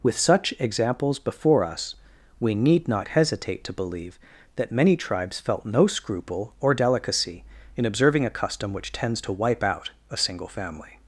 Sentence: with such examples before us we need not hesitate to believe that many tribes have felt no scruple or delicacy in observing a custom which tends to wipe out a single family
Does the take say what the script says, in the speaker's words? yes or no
no